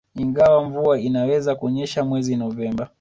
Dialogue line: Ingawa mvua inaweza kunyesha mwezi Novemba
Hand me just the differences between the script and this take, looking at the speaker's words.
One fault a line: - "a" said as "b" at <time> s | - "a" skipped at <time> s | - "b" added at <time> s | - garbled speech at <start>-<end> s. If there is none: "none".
none